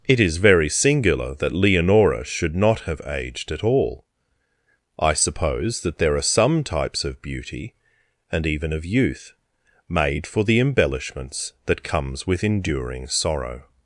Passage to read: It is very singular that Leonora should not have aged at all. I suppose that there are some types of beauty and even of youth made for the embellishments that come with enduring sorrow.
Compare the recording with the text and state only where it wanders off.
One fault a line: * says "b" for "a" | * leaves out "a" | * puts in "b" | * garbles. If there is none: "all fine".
* says "comes" for "come"